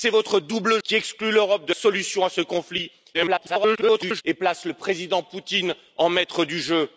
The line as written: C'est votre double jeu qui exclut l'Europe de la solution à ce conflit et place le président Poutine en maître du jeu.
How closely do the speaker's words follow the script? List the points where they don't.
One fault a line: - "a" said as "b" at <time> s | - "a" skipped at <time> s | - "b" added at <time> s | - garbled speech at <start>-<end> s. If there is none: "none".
- "jeu" skipped at 0.8 s
- "la" skipped at 1.7 s
- garbled speech at 3.1-4.2 s